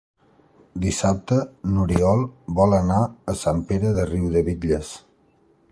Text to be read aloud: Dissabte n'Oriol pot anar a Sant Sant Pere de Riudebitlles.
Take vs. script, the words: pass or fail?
fail